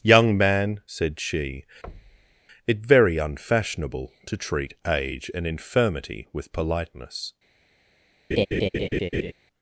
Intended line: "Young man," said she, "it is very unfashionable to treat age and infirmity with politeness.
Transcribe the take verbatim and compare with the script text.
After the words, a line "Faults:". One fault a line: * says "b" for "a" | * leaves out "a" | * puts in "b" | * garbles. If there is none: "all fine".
"Young man," said she, "it very unfashionable to treat age and infirmity with politeness.
Faults:
* leaves out "is"